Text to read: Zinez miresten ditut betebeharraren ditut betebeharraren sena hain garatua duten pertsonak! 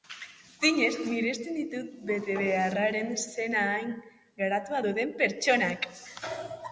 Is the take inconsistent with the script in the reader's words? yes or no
yes